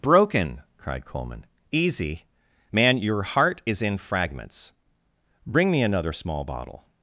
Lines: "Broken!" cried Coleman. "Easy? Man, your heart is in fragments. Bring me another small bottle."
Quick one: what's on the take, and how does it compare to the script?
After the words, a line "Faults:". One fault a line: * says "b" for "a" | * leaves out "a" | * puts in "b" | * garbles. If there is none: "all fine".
"Broken!" cried Coleman. "Easy? Man, your heart is in fragments. Bring me another small bottle."
Faults:
all fine